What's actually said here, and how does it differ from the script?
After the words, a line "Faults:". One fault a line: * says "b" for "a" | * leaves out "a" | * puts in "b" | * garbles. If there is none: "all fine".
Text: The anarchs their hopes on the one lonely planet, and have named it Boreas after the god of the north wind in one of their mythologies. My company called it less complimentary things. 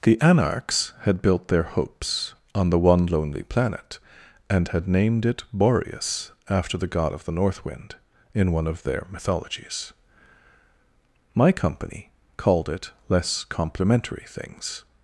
The anarchs had built their hopes on the one lonely planet, and had named it Boreas after the god of the north wind in one of their mythologies. My company called it less complimentary things.
Faults:
* puts in "had built"
* says "had" for "have"